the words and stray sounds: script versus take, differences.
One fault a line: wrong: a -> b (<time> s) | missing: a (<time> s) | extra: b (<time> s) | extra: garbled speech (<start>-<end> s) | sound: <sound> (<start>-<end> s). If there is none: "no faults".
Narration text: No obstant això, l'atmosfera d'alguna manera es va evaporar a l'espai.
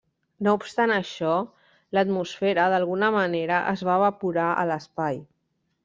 no faults